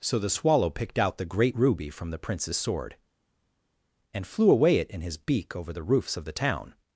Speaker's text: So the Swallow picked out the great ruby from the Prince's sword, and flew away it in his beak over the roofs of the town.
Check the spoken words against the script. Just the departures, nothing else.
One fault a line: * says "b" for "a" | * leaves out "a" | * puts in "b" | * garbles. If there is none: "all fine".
all fine